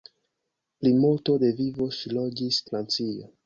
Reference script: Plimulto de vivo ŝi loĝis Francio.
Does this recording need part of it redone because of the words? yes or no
no